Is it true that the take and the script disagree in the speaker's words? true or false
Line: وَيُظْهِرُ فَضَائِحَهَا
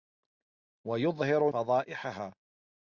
false